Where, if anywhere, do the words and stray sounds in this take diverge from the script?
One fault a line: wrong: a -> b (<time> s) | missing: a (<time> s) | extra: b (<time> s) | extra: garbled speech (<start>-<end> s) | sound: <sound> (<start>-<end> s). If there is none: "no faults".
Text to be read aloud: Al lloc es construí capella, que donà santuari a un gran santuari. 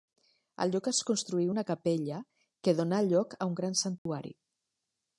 extra: una (1.5 s)
wrong: santuari -> lloc (3.1 s)
sound: dropout (4.0-4.1 s)